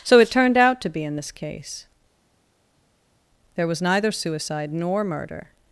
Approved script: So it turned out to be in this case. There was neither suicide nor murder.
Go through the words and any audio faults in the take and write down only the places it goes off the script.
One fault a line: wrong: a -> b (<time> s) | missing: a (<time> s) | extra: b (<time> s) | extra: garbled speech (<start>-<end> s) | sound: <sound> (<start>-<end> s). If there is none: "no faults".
no faults